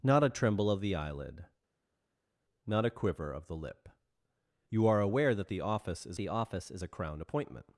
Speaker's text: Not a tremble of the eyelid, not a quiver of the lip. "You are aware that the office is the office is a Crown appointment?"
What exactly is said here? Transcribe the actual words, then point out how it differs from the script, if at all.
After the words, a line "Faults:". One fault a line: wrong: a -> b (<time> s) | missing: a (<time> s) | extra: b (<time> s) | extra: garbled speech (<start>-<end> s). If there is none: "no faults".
Not a tremble of the eyelid, not a quiver of the lip. "You are aware that the office is the office is a Crown appointment?"
Faults:
no faults